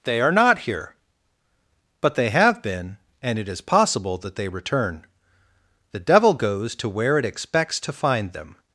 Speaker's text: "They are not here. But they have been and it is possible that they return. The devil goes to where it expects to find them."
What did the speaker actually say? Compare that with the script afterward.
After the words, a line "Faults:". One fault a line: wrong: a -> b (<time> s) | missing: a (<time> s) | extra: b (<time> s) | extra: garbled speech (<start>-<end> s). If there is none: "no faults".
"They are not here. But they have been and it is possible that they return. The devil goes to where it expects to find them."
Faults:
no faults